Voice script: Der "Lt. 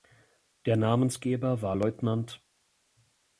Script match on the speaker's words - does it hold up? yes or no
no